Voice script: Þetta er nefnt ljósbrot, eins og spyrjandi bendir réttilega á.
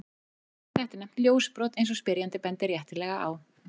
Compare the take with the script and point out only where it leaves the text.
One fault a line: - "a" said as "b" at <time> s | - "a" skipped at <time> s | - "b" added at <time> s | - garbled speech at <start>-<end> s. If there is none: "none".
none